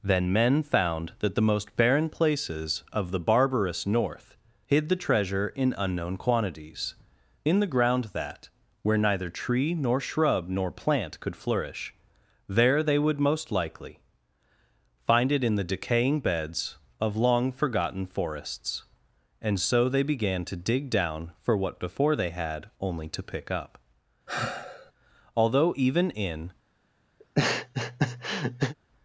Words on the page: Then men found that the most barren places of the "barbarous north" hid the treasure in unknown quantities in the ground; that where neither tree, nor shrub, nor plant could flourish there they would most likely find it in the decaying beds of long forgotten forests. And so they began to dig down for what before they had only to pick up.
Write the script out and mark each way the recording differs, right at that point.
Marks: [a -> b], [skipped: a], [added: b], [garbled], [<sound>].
Then men found that the most barren places of the "barbarous north" hid the treasure in unknown quantities in the ground; that where neither tree, nor shrub, nor plant could flourish there they would most likely find it in the decaying beds of long forgotten forests. And so they began to dig down for what before they had only to pick up. [sigh] [added: Although even in] [laugh]